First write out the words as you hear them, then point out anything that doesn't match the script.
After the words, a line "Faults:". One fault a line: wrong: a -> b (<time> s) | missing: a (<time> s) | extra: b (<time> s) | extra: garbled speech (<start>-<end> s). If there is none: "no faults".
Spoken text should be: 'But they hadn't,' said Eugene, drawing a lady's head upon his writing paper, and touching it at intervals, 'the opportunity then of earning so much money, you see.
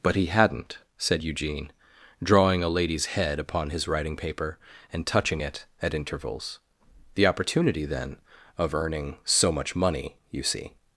'But he hadn't,' said Eugene, drawing a lady's head upon his writing paper, and touching it at intervals, 'the opportunity then of earning so much money, you see.
Faults:
wrong: they -> he (0.1 s)